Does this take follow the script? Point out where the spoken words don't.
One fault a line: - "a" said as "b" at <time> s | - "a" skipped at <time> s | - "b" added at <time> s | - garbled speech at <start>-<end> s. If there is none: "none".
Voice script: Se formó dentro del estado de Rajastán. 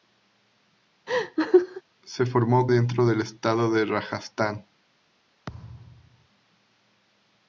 none